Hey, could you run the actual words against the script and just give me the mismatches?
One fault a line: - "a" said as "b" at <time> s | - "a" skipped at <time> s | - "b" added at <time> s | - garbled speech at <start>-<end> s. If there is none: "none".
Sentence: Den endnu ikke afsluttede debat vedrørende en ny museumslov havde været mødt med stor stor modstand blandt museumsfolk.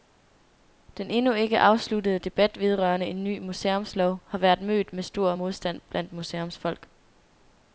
- "havde" said as "har" at 4.3 s
- "stor" skipped at 5.3 s